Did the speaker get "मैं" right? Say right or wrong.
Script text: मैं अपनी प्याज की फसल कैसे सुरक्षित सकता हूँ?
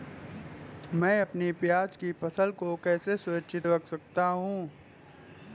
right